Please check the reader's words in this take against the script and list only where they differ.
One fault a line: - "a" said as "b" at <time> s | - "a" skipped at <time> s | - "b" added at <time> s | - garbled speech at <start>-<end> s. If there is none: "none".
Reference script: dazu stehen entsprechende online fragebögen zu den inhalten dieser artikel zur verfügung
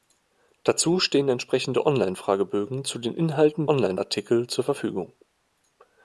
- "dieser" said as "online" at 3.7 s